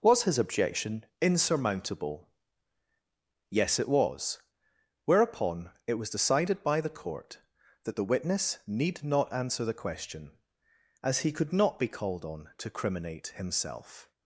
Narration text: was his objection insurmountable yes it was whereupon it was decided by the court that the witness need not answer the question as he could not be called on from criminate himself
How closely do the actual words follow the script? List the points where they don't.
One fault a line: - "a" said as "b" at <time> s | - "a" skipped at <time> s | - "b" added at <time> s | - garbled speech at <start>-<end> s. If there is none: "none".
- "from" said as "to" at 12.6 s